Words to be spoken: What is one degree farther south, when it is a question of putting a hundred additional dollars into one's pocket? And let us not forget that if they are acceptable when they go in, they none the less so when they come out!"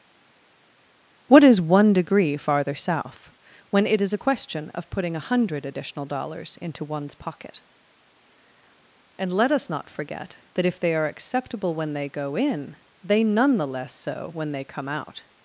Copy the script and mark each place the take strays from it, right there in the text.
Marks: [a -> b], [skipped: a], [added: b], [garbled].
What is one degree farther south, when it is a question of putting a hundred additional dollars into one's pocket? And let us not forget that if they are acceptable when they go in, they none the less so when they come out!"